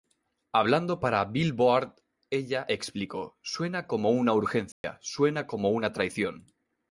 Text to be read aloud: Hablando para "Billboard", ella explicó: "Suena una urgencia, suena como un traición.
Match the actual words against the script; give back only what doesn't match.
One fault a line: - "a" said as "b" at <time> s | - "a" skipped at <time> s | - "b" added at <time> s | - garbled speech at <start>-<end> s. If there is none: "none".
- "como" added at 3.9 s
- "un" said as "una" at 5.7 s